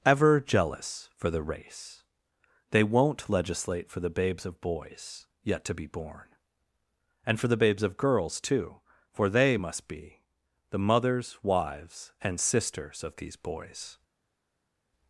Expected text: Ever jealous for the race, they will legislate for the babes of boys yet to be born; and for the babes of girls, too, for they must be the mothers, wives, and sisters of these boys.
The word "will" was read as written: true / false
false